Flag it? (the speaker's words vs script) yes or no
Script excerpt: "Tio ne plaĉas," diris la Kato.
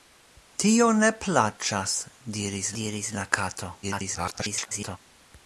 yes